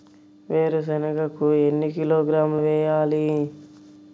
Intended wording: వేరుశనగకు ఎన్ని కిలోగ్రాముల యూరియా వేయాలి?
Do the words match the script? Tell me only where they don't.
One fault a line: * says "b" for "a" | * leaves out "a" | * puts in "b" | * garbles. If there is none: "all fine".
* leaves out "యూరియా"